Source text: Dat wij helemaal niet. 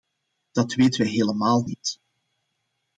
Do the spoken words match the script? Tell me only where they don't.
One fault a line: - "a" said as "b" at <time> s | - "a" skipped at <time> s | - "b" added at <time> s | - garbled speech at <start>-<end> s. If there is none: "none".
- "weten" added at 0.7 s